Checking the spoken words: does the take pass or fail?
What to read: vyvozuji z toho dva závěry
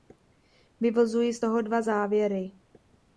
pass